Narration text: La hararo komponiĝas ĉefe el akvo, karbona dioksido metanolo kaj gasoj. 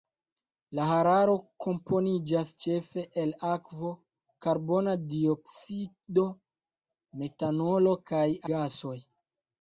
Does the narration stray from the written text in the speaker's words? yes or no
no